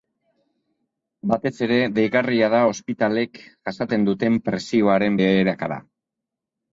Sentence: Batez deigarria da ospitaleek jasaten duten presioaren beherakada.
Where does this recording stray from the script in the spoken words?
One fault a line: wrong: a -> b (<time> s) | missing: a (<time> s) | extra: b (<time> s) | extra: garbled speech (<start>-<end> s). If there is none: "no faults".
extra: ere (1.6 s)